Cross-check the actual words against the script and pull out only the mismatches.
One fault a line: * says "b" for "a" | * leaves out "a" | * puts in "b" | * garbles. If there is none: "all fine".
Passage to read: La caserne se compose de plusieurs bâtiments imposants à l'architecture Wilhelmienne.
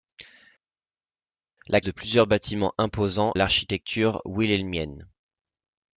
* leaves out "caserne se compose"
* leaves out "à"